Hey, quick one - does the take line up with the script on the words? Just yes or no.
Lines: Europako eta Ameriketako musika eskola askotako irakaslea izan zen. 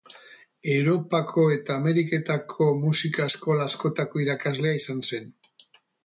yes